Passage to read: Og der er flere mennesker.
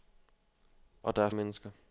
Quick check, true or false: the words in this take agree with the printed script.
false